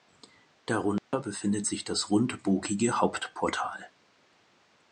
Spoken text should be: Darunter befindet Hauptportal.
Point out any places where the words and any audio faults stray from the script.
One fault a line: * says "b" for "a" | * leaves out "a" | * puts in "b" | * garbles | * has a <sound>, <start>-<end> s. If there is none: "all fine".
* has a dropout, 1.0-1.1 s
* puts in "sich das rundbogige"